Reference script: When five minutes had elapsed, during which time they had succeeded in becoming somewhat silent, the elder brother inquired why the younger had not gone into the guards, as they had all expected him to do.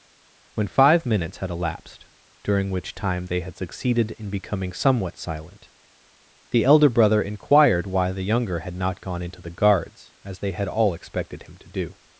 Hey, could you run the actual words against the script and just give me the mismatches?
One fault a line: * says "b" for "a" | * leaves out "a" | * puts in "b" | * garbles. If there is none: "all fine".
all fine